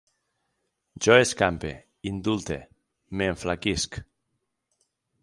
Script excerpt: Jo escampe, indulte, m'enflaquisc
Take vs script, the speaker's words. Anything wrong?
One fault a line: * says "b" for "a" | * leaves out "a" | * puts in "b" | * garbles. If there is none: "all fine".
all fine